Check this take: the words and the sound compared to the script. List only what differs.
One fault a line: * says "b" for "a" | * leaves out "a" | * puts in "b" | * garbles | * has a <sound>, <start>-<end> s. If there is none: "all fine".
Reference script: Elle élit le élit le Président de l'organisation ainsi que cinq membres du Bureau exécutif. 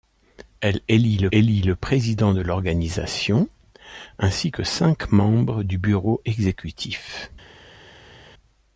all fine